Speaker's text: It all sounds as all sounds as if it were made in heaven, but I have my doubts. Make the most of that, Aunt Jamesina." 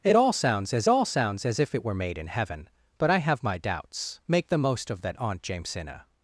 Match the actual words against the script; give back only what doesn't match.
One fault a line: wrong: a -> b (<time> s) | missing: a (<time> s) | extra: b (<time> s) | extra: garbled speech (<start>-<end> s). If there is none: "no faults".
no faults